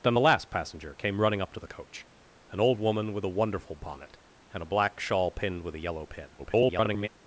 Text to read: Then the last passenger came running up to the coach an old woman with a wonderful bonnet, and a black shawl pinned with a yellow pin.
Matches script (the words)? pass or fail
fail